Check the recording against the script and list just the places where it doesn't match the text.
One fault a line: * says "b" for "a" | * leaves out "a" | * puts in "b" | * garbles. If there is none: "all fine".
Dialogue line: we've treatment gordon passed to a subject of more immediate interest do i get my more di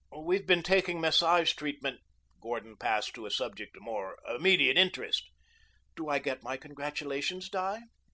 * puts in "been taking massage"
* says "congratulations" for "more"